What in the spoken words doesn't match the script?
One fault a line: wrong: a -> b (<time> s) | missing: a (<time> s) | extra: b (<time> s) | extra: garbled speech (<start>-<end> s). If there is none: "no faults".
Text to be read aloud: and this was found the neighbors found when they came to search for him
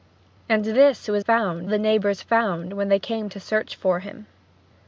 no faults